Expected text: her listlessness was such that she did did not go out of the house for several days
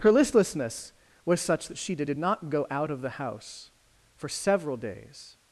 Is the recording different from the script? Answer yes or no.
no